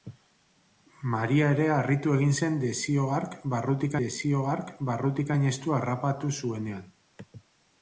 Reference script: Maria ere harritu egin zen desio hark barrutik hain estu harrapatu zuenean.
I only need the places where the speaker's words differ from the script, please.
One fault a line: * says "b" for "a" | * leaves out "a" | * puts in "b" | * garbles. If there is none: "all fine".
* puts in "desio hark barrutik"